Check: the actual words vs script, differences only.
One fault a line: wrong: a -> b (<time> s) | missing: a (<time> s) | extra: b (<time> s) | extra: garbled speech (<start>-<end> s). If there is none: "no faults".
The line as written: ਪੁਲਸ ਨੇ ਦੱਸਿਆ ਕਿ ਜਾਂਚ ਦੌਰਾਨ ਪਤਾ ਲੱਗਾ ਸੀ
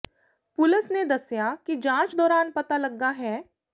wrong: ਸੀ -> ਹੈ (3.1 s)